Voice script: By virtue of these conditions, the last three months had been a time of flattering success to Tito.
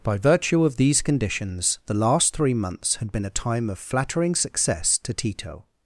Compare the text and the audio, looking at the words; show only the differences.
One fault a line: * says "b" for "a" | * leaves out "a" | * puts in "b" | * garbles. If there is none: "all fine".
all fine